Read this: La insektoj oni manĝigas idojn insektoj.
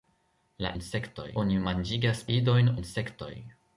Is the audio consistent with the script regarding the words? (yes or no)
yes